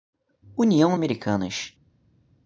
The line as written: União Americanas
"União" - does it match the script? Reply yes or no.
yes